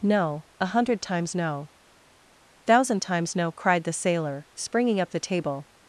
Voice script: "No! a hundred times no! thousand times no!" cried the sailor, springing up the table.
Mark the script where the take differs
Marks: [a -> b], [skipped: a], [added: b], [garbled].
"No! a hundred times no! thousand times no!" cried the sailor, springing up the table.